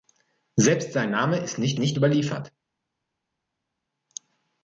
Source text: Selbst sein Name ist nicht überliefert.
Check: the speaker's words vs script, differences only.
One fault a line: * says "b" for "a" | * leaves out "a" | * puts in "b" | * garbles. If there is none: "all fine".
* puts in "nicht"